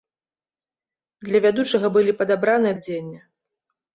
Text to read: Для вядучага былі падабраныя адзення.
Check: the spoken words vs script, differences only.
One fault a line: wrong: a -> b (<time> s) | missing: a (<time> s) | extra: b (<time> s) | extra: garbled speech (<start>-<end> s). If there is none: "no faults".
no faults